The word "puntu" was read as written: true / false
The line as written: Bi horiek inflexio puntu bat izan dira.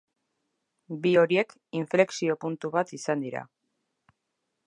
true